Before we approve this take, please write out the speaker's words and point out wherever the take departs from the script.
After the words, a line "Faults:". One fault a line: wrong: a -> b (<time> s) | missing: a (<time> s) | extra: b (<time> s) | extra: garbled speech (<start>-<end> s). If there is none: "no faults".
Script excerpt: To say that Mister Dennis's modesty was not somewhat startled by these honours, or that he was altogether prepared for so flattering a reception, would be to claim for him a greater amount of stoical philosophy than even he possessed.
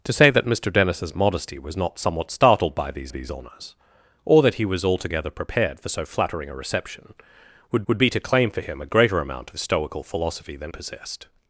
To say that Mister Dennis's modesty was not somewhat startled by these these honours, or that he was altogether prepared for so flattering a reception, would would be to claim for him a greater amount of stoical philosophy than possessed.
Faults:
extra: these (3.1 s)
extra: would (7.9 s)
missing: even he (10.7 s)